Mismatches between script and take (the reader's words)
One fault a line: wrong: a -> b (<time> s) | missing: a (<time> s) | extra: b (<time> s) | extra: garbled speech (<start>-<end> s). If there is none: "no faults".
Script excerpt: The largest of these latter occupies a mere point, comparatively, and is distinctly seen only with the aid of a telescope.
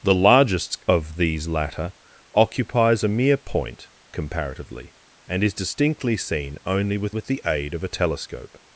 extra: with (7.1 s)